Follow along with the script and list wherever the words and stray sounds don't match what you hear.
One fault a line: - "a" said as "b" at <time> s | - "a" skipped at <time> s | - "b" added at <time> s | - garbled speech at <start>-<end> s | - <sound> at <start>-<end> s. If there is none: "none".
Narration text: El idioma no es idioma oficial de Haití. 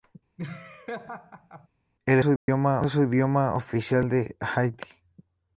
- laugh at 0.4-1.7 s
- dropout at 2.4-2.5 s